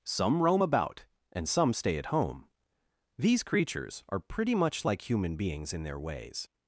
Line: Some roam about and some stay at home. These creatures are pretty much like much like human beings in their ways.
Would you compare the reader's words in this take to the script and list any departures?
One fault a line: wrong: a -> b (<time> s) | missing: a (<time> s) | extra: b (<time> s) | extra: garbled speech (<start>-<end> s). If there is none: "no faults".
missing: much like (5.1 s)